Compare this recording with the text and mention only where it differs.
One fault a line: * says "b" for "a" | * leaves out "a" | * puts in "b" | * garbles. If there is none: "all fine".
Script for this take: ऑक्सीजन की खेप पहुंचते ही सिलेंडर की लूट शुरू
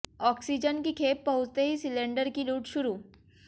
all fine